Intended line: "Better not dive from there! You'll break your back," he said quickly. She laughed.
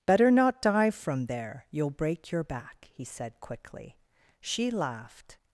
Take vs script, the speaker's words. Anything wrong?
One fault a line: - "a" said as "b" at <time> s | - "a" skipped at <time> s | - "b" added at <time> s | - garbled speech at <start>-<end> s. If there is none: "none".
none